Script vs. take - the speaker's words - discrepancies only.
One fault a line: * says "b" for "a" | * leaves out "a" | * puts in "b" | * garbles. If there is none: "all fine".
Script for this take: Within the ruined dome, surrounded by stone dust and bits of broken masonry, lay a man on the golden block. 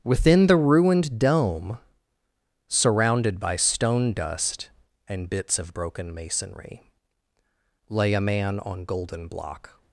* leaves out "the"